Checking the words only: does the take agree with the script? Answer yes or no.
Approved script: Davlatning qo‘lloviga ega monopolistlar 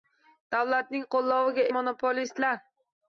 no